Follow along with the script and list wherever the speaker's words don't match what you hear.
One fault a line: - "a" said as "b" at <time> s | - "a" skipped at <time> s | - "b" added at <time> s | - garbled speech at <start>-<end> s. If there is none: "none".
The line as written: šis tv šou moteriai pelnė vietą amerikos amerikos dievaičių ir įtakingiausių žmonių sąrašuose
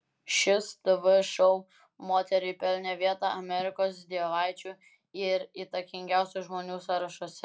- "amerikos" skipped at 4.0 s